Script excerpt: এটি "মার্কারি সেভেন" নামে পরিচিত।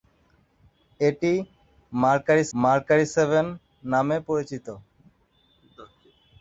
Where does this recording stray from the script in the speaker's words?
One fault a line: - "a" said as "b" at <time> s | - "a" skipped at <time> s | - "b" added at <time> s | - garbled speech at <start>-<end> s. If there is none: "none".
- "মার্কারি" added at 2.5 s